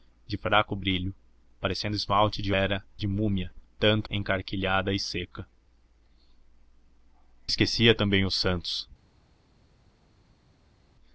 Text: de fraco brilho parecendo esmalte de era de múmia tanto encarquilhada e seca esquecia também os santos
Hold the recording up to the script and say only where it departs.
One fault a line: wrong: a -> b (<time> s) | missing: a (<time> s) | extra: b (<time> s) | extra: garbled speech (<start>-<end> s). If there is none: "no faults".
no faults